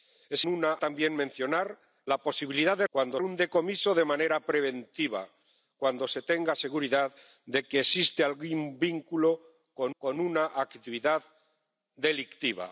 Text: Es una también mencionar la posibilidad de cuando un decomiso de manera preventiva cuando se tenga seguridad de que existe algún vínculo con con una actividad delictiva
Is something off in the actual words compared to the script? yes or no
no